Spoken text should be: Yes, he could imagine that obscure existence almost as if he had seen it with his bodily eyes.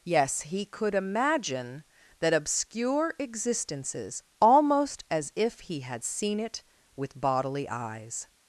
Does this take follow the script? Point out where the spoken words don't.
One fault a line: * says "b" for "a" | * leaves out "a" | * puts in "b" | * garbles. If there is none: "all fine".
* says "existences" for "existence"
* leaves out "his"